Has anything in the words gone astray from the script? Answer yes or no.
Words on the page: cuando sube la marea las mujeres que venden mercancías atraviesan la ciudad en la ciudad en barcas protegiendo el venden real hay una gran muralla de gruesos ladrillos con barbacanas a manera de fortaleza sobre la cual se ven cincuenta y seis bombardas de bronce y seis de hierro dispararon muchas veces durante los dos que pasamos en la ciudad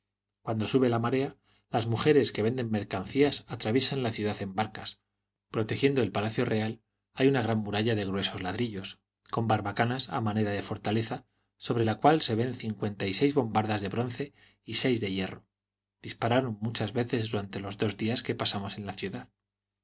yes